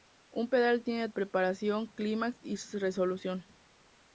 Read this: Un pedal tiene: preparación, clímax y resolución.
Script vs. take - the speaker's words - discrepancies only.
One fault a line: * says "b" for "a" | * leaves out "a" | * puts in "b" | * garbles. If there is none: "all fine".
all fine